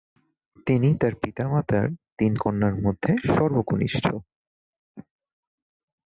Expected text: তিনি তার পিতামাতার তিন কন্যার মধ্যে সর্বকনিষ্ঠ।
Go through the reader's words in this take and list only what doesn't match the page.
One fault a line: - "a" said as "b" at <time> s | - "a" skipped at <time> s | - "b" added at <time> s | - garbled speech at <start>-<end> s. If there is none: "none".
none